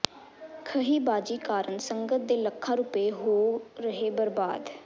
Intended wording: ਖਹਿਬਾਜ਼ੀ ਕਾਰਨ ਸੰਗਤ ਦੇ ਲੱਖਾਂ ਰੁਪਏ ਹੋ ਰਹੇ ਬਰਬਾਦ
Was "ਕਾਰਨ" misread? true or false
false